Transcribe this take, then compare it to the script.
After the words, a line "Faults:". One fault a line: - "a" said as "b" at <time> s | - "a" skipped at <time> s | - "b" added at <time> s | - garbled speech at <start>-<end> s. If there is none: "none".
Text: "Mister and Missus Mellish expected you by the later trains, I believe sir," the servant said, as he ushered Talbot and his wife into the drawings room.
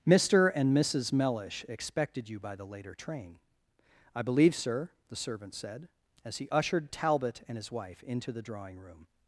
"Mister and Missus Mellish expected you by the later train, I believe sir," the servant said, as he ushered Talbot and his wife into the drawing room.
Faults:
- "trains" said as "train" at 3.0 s
- "drawings" said as "drawing" at 8.4 s